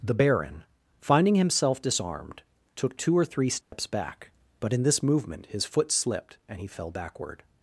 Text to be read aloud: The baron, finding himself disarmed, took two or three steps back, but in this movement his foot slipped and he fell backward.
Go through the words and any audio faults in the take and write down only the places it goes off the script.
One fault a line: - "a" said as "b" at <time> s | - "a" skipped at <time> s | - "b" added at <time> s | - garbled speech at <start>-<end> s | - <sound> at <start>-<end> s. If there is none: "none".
- dropout at 3.6-3.7 s